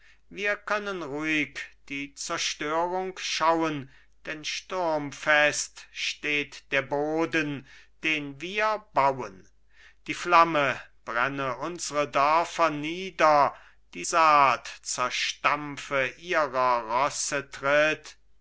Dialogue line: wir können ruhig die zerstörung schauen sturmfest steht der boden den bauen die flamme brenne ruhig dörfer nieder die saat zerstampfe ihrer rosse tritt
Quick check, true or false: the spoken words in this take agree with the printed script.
false